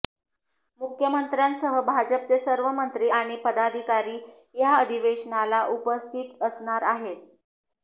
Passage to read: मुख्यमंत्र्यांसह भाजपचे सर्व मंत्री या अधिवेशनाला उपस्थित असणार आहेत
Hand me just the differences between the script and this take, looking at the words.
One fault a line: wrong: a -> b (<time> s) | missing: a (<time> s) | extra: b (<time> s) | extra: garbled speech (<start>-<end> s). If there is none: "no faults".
extra: आणि पदाधिकारी (3.1 s)